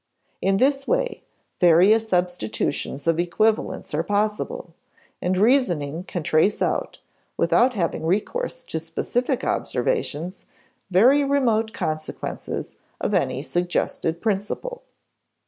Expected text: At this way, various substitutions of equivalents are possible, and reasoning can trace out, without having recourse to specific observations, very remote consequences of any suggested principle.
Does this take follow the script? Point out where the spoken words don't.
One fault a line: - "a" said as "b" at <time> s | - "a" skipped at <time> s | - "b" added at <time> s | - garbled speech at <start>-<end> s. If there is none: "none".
- "At" said as "In" at 0.4 s